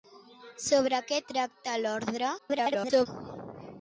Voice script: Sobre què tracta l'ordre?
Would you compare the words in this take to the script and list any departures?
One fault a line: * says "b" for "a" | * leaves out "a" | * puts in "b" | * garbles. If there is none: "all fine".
* garbles